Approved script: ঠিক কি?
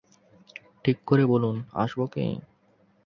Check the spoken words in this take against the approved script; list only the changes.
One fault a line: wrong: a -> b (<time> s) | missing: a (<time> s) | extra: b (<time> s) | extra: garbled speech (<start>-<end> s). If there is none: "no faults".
extra: করে বলুন আসব (1.1 s)